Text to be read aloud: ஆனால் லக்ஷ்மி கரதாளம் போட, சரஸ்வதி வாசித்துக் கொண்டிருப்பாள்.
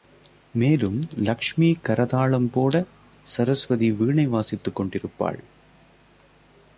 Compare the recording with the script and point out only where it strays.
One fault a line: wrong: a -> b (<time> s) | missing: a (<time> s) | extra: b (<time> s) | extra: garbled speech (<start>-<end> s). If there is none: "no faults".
wrong: ஆனால் -> மேலும் (0.5 s)
extra: வீணை (3.9 s)